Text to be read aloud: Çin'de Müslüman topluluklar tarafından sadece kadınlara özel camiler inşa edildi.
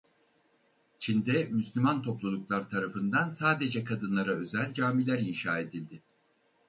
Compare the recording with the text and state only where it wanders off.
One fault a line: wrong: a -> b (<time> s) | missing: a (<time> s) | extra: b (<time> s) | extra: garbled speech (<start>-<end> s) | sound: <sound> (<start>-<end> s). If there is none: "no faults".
no faults